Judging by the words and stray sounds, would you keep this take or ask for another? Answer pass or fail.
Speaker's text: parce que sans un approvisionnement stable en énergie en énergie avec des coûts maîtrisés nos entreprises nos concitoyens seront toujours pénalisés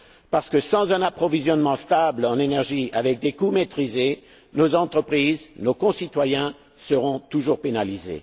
fail